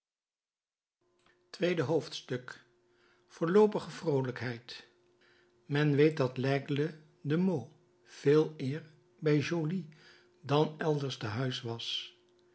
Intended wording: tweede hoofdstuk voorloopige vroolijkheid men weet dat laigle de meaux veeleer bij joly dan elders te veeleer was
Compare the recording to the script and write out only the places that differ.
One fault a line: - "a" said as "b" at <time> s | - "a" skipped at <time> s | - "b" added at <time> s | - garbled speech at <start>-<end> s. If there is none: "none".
- "veeleer" said as "huis" at 11.3 s